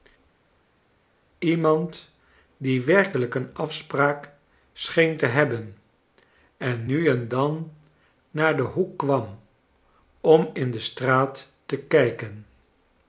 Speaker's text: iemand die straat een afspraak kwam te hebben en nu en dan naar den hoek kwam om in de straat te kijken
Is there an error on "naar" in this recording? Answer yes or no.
no